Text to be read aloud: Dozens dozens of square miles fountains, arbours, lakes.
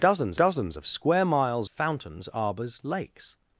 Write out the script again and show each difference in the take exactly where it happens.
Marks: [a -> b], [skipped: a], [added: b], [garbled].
Dozens dozens of square miles fountains, arbours, lakes.